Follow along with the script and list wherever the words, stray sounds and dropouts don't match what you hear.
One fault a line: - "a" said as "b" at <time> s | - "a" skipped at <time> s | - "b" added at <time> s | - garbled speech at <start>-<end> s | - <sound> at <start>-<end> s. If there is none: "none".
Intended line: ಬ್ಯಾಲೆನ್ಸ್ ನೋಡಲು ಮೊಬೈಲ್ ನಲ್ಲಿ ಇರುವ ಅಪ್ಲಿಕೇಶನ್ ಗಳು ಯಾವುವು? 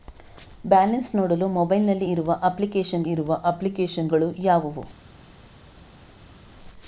- "ಇರುವ ಅಪ್ಲಿಕೇಶನ್" added at 3.1 s